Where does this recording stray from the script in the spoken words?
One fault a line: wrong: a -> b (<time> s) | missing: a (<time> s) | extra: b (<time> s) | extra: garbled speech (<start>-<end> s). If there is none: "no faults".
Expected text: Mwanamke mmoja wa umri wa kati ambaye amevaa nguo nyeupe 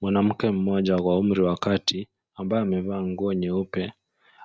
no faults